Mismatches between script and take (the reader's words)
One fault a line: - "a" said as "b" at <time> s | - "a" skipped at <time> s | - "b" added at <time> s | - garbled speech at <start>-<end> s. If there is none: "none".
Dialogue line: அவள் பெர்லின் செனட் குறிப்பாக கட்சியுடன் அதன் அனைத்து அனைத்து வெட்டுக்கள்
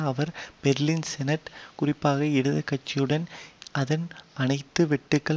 - "அவள்" said as "அவர்" at 0.0 s
- "இடது" added at 2.2 s
- "அனைத்து" skipped at 4.9 s